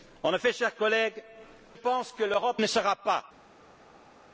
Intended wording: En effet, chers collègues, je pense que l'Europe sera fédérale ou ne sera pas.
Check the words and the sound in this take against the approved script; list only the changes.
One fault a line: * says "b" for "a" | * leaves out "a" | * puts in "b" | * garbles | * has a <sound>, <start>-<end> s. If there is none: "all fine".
* leaves out "je"
* leaves out "sera fédérale ou"